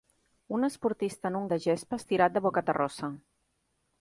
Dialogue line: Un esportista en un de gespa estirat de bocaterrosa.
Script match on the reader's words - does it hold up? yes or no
yes